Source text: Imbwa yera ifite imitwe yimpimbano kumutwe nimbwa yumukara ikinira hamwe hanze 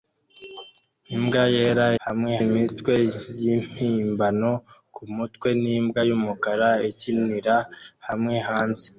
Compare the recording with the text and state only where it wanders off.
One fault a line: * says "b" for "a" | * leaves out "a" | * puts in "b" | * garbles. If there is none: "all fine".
* says "hamwe" for "ifite"